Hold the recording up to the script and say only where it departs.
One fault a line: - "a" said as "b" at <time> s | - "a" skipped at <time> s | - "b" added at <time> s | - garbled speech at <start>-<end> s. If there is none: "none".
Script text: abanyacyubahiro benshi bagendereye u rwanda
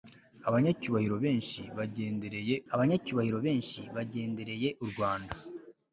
- "abanyacyubahiro benshi bagendereye" added at 2.7 s